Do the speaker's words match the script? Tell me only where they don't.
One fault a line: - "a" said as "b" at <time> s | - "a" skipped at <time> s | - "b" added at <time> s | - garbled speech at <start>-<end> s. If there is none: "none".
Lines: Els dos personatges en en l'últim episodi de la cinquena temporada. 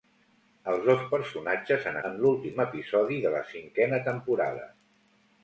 none